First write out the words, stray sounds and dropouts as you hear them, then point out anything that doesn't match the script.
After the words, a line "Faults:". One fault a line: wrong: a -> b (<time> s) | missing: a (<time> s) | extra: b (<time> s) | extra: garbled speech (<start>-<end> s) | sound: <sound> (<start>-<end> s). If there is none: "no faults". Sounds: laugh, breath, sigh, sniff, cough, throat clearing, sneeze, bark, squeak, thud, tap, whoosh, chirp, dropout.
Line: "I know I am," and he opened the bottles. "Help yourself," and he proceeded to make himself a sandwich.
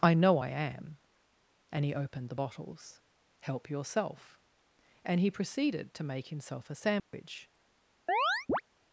"I know I am," and he opened the bottles. "Help yourself," and he proceeded to make himself a sandwich.
Faults:
sound: dropout (7.0-7.1 s)
sound: chirp (8.1-8.6 s)